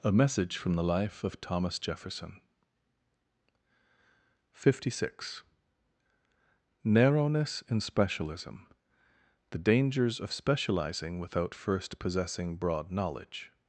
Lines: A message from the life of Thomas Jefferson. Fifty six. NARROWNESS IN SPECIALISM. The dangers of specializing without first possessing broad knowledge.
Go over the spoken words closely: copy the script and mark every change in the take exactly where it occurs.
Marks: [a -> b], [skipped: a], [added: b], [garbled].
A message from the life of Thomas Jefferson. Fifty six. NARROWNESS IN SPECIALISM. The dangers of specializing without first possessing broad knowledge.